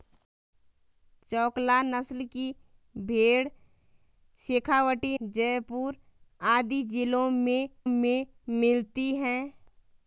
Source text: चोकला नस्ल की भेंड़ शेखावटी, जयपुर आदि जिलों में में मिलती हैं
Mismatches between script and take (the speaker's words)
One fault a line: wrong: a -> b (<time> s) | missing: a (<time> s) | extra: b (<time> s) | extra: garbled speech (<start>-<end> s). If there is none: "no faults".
no faults